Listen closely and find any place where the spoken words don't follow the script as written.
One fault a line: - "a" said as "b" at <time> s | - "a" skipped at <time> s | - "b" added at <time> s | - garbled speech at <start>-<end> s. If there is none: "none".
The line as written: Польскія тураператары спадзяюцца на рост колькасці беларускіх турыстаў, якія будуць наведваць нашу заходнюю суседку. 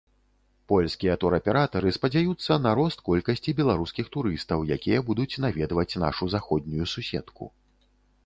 none